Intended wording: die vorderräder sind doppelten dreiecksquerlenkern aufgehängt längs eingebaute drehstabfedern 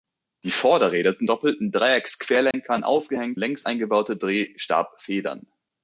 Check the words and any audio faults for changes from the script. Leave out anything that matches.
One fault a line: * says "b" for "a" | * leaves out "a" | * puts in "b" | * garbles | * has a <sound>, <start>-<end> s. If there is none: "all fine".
* has a dropout, 2.5-2.5 s